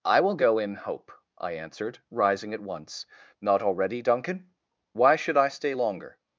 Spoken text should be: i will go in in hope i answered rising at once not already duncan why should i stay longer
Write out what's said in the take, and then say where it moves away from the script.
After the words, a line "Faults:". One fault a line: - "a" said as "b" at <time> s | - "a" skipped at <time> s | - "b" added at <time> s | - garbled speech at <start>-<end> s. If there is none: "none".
i will go in hope i answered rising at once not already duncan why should i stay longer
Faults:
- "in" skipped at 0.8 s